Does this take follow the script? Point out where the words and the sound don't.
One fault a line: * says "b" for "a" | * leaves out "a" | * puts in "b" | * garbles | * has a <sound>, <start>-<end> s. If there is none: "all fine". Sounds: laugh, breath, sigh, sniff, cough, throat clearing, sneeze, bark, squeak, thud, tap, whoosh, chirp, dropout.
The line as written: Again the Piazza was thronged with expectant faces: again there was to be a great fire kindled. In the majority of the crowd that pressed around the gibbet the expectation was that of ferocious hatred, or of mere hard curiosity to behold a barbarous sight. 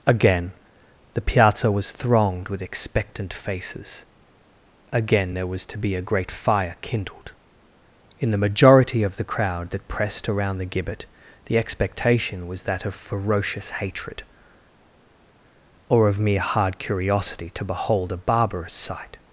all fine